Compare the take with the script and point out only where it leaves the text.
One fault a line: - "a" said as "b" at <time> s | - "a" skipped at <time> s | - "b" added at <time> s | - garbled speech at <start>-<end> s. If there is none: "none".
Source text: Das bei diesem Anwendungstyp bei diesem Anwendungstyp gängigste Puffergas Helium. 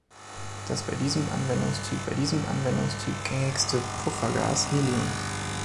none